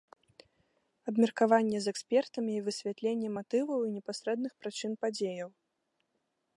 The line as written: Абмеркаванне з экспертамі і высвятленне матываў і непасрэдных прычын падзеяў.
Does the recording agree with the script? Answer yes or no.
yes